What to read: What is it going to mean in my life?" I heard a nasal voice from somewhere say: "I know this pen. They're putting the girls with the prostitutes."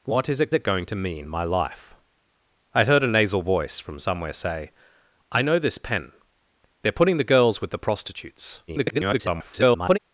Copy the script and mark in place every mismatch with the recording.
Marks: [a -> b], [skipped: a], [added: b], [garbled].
What is it [added: it] going to mean [skipped: in] my life?" I heard a nasal voice from somewhere say: "I know this pen. They're putting the girls with the prostitutes." [garbled]